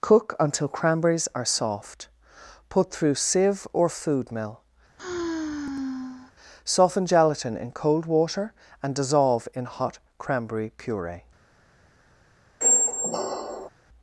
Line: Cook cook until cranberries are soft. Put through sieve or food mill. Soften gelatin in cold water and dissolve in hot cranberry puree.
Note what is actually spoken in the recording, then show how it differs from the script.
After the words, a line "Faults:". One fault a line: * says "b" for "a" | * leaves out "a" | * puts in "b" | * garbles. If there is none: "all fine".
Cook until cranberries are soft. Put through sieve or food mill. Soften gelatin in cold water and dissolve in hot cranberry puree.
Faults:
* leaves out "cook"